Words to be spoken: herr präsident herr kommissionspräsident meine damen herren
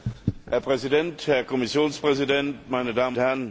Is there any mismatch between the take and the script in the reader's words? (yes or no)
no